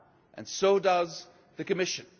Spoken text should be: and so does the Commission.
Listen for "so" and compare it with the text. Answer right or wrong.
right